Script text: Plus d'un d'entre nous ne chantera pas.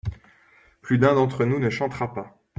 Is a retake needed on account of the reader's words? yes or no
no